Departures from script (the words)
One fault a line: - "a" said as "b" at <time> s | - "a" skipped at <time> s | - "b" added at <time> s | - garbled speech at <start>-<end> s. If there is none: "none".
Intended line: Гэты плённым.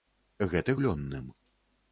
none